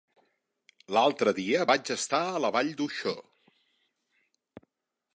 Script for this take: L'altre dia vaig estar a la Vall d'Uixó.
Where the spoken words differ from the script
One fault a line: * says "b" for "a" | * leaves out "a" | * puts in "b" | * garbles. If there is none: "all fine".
all fine